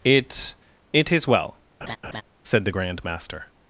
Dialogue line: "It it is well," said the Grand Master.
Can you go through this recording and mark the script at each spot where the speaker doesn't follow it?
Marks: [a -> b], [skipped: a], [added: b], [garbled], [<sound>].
"It it is well," [laugh] said the Grand Master.